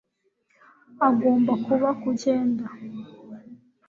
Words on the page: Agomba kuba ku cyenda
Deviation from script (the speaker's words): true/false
false